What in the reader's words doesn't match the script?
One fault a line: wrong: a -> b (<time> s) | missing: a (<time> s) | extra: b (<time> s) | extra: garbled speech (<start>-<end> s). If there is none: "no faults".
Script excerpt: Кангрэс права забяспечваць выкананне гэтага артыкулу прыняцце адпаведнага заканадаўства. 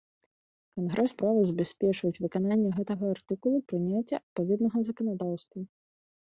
no faults